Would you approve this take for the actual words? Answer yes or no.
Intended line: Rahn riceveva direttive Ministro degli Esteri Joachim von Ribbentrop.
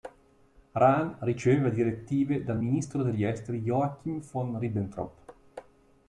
no